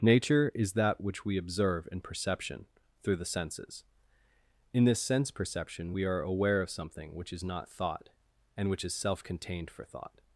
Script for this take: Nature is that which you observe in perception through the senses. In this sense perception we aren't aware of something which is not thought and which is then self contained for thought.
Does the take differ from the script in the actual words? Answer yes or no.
yes